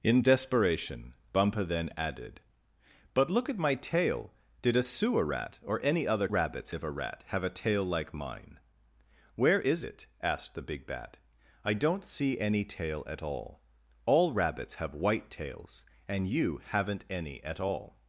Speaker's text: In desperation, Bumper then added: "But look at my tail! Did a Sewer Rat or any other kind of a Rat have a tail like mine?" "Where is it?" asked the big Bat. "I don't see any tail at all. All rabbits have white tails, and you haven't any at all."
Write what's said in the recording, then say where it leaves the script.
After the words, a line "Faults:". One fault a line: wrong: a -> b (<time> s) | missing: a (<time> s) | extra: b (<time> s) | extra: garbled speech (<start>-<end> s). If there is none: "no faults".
In desperation, Bumper then added: "But look at my tail! Did a Sewer Rat or any other rabbits of a Rat have a tail like mine?" "Where is it?" asked the big Bat. "I don't see any tail at all. All rabbits have white tails, and you haven't any at all."
Faults:
wrong: kind -> rabbits (6.3 s)